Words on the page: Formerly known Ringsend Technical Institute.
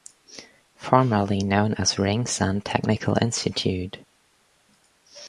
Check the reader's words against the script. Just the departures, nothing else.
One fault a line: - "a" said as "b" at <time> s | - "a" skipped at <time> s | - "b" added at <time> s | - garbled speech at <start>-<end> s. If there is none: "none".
- "as" added at 1.8 s